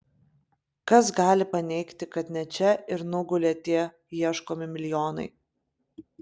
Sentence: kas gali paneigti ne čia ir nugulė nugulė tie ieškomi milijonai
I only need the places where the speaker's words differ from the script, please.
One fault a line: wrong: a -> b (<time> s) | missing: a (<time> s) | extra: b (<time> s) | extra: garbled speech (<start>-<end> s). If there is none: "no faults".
extra: kad (2.1 s)
missing: nugulė (3.5 s)